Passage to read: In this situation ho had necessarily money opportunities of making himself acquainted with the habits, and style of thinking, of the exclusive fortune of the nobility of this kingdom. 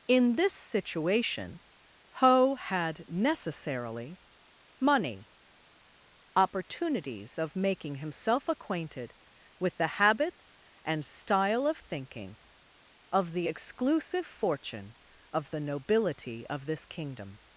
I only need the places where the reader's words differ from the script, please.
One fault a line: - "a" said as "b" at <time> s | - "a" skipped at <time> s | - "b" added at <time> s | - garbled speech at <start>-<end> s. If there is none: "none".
none